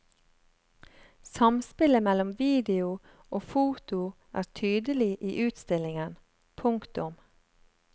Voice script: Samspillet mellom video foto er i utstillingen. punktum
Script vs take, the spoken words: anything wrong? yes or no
yes